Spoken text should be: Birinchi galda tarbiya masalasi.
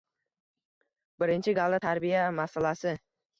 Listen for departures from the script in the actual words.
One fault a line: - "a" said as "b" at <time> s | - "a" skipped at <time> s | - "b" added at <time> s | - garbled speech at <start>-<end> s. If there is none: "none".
none